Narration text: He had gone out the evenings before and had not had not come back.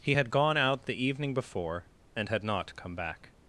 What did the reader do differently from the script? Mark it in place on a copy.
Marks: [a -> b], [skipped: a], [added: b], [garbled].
He had gone out the [evenings -> evening] before and had not [skipped: had not] come back.